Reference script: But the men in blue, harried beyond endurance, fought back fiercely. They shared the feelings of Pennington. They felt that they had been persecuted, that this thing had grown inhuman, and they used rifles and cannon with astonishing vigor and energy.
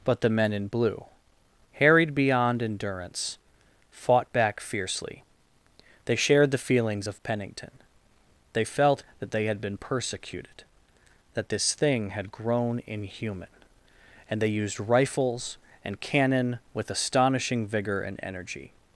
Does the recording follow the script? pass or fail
pass